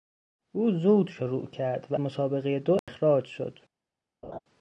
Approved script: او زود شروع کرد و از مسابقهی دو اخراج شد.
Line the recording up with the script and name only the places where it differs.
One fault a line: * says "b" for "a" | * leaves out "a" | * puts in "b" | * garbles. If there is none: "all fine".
* leaves out "از"